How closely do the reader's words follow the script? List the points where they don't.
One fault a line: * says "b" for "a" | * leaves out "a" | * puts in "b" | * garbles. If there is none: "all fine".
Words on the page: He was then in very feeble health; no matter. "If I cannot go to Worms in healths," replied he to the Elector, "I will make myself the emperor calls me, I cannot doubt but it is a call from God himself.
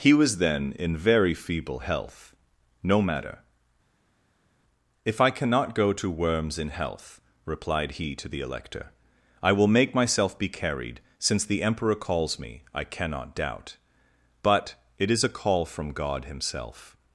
* says "health" for "healths"
* puts in "be carried since"